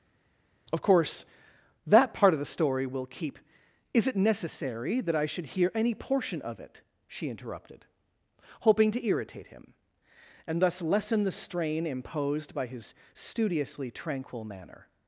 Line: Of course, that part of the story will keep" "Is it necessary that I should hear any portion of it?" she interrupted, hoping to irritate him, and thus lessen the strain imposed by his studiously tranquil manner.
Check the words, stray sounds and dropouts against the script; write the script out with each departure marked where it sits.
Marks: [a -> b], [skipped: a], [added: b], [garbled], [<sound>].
Of course, that part of the story will keep" "Is it necessary that I should hear any portion of it?" she interrupted, hoping to irritate him, and thus lessen the strain imposed by his studiously tranquil manner.